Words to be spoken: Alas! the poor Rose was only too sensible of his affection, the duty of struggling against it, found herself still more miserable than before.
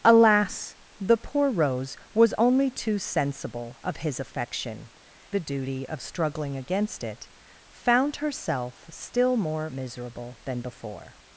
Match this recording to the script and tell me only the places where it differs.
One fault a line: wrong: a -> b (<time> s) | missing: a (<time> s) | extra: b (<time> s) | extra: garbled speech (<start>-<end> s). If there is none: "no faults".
no faults